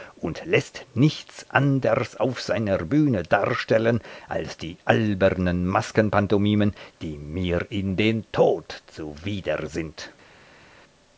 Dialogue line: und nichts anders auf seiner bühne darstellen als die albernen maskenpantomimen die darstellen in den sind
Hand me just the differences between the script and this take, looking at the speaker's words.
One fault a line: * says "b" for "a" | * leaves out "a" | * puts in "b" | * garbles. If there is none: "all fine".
* puts in "läßt"
* says "mir" for "darstellen"
* puts in "tod zuwider"